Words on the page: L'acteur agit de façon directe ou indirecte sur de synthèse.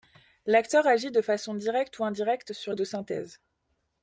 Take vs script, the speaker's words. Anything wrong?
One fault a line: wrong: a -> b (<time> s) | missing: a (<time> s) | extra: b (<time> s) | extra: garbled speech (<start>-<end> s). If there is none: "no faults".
no faults